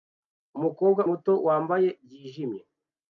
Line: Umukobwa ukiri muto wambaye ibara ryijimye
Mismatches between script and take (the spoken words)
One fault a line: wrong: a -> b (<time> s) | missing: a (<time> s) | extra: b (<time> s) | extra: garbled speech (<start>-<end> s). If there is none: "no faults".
missing: ukiri (1.0 s)
missing: ibara (1.9 s)